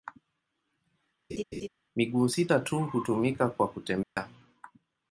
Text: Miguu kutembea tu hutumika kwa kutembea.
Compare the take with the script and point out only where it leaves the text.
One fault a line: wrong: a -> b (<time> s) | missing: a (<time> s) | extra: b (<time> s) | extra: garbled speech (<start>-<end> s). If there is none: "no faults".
wrong: kutembea -> sita (2.3 s)